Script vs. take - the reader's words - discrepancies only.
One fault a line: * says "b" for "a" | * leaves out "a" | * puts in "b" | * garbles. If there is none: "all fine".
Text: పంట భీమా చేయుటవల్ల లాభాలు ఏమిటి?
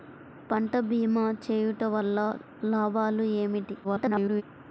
* garbles